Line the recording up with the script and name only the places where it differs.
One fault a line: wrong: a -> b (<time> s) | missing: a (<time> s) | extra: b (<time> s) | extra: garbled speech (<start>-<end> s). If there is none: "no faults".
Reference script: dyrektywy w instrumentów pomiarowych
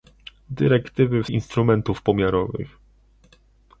no faults